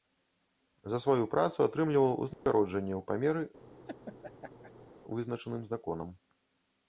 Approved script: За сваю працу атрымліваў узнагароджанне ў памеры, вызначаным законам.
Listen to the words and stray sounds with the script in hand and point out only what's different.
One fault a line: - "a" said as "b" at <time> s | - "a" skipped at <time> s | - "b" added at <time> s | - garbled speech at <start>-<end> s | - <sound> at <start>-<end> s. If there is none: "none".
- dropout at 2.3-2.5 s
- laugh at 3.6-4.9 s